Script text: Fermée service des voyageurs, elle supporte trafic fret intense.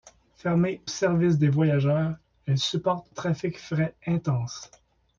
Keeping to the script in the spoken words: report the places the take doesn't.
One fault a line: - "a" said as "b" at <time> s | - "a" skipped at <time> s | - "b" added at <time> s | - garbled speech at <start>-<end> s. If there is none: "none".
none